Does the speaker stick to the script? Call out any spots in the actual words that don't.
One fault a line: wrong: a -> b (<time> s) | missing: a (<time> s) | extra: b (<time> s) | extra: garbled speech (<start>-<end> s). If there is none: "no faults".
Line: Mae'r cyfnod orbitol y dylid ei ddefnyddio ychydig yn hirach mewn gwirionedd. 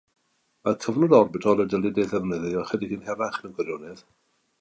no faults